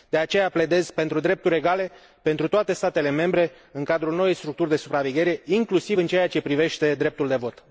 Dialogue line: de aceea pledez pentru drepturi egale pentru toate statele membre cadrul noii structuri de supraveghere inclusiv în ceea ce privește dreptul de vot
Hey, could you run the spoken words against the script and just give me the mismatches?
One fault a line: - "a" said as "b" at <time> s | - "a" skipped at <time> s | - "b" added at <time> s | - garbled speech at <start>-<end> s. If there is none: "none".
- "în" added at 3.7 s